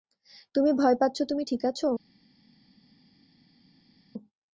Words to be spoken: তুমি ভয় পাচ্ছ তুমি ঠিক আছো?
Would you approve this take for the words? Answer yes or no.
yes